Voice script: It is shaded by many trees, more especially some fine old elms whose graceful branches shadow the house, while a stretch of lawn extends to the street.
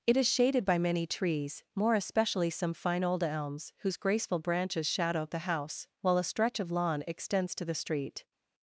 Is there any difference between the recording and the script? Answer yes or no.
no